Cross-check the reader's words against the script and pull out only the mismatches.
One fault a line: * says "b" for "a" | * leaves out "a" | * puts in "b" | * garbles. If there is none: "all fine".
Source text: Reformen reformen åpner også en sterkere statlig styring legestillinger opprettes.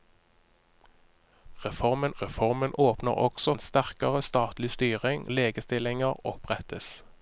all fine